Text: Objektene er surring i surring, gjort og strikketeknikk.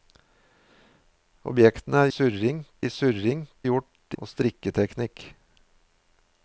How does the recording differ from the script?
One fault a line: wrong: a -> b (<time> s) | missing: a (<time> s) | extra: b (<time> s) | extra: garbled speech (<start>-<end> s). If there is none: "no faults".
no faults